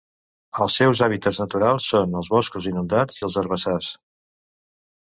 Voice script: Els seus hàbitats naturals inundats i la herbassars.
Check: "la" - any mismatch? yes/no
yes